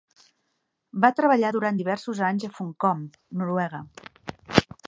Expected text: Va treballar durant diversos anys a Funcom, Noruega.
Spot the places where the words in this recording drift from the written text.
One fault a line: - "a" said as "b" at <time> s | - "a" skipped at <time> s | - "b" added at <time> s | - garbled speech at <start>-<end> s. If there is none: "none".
none